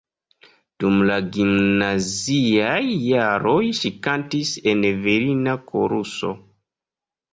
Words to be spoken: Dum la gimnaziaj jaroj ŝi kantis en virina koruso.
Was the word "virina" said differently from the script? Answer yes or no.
no